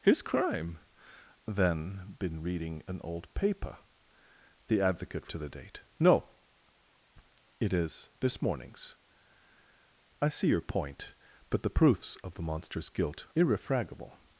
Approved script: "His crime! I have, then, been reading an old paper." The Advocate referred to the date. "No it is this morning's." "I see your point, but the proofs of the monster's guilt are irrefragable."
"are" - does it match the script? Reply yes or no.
no